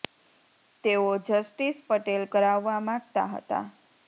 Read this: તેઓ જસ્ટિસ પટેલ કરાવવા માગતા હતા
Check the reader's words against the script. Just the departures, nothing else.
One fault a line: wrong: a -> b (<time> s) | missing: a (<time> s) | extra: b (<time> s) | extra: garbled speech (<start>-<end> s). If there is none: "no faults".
no faults